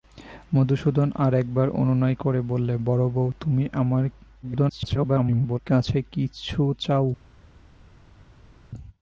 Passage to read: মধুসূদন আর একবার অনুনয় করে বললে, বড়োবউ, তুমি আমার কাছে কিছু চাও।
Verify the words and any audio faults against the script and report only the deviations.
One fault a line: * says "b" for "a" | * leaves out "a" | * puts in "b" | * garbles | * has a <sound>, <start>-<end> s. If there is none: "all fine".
* garbles